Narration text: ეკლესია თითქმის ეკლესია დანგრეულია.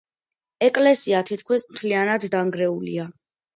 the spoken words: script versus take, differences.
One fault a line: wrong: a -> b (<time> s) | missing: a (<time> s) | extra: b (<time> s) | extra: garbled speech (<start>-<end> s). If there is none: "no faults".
wrong: ეკლესია -> მთლიანად (1.7 s)